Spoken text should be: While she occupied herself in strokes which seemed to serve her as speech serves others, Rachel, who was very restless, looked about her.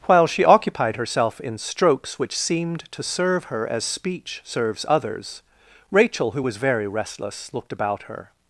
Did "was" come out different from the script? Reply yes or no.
no